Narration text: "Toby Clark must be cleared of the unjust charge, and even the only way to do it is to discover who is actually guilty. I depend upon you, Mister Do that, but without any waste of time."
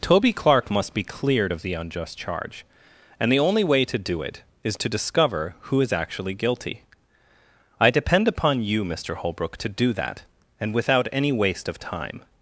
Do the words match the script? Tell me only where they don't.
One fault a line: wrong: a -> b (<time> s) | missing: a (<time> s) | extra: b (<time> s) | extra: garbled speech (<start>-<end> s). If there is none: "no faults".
missing: even (3.3 s)
extra: Holbrook to (9.2 s)
wrong: but -> and (10.6 s)